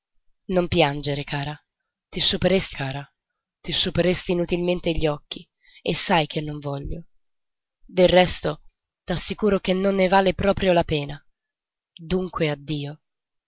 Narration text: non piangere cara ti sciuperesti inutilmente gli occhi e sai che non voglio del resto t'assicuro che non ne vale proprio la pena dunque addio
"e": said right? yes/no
yes